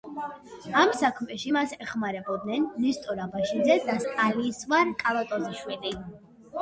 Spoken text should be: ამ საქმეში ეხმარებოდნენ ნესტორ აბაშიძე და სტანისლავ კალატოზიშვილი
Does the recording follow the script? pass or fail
fail